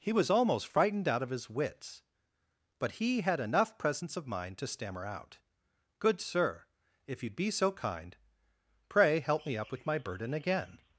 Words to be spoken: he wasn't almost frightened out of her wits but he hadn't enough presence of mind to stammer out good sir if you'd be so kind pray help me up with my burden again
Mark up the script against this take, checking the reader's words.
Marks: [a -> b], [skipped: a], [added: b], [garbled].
he [wasn't -> was] almost frightened out of [her -> his] wits but he [hadn't -> had] enough presence of mind to stammer out good sir if you'd be so kind pray help me up with my burden again